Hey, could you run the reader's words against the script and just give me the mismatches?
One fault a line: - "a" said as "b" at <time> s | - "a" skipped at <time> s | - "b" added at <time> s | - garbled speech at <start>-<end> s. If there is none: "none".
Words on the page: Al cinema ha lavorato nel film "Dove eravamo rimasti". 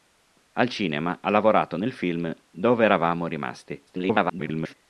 - garbled speech at 3.9-4.7 s